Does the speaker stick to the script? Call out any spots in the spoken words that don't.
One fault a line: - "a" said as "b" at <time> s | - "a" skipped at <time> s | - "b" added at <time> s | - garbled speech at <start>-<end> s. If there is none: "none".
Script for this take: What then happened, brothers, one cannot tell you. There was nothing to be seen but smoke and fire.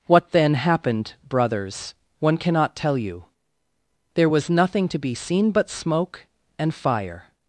none